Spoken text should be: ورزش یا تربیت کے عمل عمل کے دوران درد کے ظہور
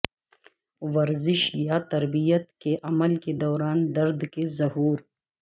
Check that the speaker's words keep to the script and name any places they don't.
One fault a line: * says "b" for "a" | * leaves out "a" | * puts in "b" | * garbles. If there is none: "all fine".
* leaves out "عمل"